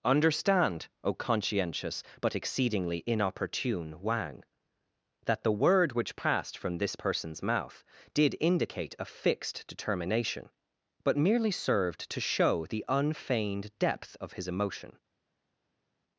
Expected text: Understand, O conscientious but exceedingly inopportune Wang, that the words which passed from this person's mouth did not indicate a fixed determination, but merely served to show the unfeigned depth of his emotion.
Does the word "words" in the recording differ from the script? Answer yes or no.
yes